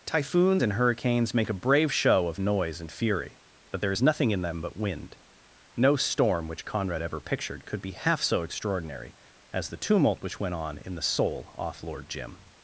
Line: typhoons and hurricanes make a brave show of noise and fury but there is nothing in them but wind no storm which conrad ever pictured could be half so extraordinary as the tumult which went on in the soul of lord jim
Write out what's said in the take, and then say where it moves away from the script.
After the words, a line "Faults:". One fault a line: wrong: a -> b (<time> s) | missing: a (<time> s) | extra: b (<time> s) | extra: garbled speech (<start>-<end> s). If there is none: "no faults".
typhoons and hurricanes make a brave show of noise and fury but there is nothing in them but wind no storm which conrad ever pictured could be half so extraordinary as the tumult which went on in the soul off lord jim
Faults:
wrong: of -> off (11.6 s)